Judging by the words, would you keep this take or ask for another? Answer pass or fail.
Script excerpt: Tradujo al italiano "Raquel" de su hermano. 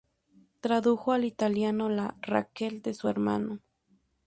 fail